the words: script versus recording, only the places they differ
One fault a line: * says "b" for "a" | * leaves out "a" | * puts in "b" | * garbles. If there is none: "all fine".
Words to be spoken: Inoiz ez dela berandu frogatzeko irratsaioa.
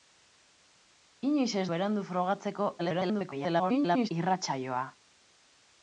* leaves out "dela"
* garbles